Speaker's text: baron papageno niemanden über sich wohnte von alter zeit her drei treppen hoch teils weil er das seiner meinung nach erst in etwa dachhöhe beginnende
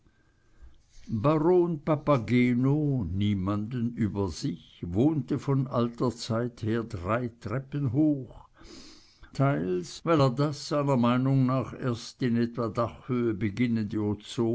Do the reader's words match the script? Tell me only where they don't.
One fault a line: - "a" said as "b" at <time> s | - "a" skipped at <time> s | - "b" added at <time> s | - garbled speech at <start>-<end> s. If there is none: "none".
none